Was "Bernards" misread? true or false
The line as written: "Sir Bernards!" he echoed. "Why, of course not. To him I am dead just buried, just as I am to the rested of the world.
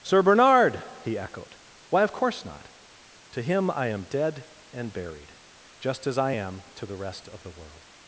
true